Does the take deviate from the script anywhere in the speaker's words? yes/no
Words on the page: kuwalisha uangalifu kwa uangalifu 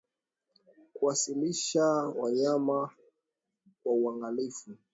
yes